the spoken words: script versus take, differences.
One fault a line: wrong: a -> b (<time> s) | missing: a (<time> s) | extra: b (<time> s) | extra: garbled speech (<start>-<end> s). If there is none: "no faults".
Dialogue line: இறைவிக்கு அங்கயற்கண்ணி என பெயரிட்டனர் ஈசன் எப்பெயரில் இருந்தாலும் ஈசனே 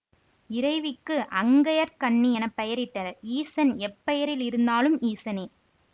no faults